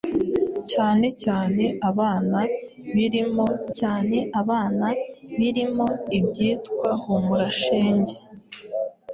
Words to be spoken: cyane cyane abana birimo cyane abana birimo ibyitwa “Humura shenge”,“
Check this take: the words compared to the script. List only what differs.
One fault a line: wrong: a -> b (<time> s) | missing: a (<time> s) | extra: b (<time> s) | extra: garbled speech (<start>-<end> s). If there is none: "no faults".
no faults